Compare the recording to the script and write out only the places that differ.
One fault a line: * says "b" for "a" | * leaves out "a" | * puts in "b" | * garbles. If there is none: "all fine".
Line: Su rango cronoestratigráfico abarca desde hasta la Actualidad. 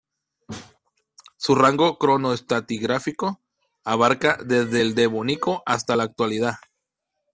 * puts in "el Devónico"